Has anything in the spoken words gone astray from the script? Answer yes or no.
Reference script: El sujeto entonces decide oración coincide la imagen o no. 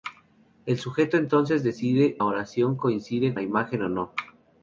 no